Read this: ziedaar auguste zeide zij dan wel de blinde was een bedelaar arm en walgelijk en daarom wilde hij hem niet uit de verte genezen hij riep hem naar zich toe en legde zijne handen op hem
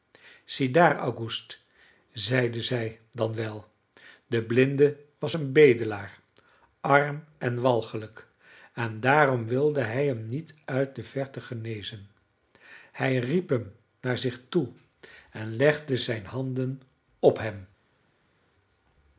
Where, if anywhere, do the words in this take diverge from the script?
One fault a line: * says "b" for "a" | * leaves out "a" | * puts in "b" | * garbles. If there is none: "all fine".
all fine